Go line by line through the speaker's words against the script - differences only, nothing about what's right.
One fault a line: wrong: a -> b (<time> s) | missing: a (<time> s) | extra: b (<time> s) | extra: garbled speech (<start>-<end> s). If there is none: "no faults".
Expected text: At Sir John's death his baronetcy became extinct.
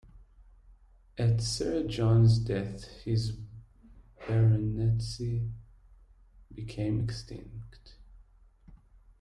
no faults